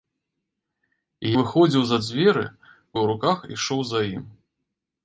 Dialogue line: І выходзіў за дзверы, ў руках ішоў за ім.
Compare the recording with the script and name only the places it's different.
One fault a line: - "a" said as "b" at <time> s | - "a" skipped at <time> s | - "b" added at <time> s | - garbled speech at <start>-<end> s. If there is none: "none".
none